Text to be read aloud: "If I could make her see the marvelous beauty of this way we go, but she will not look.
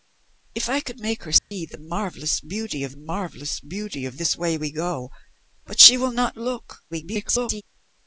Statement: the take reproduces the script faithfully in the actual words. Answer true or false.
false